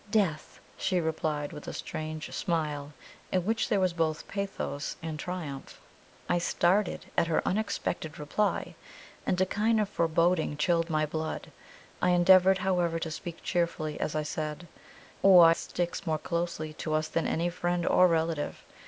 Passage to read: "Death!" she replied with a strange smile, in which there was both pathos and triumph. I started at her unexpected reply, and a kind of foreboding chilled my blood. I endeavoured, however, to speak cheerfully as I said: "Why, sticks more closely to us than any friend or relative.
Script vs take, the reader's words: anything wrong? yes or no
no